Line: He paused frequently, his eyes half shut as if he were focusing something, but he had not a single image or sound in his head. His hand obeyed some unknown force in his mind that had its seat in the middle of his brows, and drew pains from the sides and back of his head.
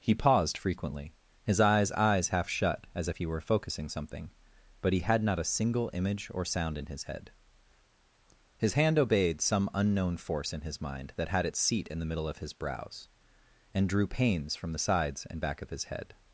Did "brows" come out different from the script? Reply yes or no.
no